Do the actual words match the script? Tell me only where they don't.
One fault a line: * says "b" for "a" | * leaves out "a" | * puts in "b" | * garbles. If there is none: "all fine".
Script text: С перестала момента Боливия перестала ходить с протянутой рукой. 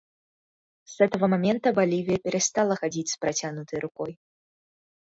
* says "этого" for "перестала"